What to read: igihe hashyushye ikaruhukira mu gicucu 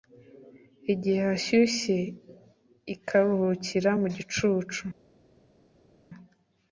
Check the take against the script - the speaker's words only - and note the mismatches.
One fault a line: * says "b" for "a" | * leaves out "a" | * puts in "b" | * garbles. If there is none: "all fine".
all fine